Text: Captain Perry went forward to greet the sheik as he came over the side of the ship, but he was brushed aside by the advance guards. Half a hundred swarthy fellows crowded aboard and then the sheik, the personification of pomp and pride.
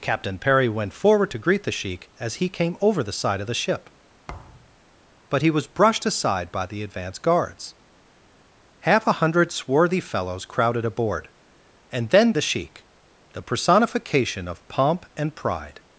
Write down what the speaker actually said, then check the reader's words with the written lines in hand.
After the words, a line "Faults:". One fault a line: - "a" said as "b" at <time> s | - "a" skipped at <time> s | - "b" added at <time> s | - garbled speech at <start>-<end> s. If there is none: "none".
Captain Perry went forward to greet the sheik as he came over the side of the ship, but he was brushed aside by the advance guards. Half a hundred swarthy fellows crowded aboard and then the sheik, the personification of pomp and pride.
Faults:
none